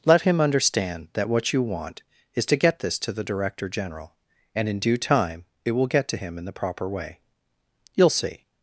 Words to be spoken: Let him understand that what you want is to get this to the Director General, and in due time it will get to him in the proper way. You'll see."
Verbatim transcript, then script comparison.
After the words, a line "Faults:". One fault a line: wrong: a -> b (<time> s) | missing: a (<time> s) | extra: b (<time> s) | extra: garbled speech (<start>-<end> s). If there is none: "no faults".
Let him understand that what you want is to get this to the Director General, and in due time it will get to him in the proper way. You'll see."
Faults:
no faults